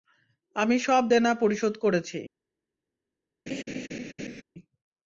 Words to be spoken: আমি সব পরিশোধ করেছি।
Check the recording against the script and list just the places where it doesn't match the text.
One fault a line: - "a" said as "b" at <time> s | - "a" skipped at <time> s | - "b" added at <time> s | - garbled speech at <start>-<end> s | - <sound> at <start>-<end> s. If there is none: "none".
- "দেনা" added at 1.1 s
- laugh at 3.5-4.4 s